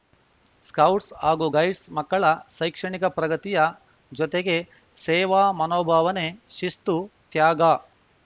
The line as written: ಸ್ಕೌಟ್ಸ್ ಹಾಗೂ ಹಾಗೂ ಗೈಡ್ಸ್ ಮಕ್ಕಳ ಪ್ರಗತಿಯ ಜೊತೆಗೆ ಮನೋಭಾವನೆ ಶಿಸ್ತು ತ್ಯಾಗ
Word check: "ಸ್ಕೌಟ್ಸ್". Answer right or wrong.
right